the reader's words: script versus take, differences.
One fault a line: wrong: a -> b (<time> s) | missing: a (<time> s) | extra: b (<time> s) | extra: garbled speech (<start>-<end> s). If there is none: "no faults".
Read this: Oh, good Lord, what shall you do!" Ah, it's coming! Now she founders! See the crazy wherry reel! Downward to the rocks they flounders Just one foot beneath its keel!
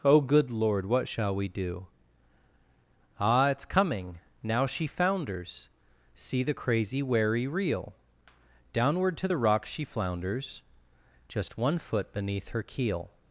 wrong: you -> we (1.4 s)
wrong: they -> she (9.7 s)
wrong: its -> her (12.5 s)